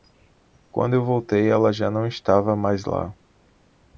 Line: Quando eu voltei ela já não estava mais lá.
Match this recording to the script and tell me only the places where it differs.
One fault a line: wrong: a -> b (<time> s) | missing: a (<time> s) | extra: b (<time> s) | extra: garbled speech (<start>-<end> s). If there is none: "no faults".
no faults